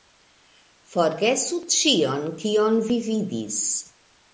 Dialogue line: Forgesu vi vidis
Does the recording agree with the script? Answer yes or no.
no